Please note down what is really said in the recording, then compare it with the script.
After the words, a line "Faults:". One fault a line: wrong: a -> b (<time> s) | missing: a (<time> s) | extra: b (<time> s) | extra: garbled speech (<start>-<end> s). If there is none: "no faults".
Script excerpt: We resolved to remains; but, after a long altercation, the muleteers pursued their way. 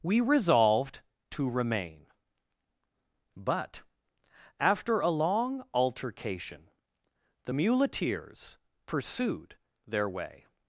We resolved to remain; but, after a long altercation, the muleteers pursued their way.
Faults:
wrong: remains -> remain (1.5 s)